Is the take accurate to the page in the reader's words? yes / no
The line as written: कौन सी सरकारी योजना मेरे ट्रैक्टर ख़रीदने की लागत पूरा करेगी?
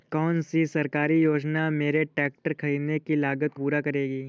yes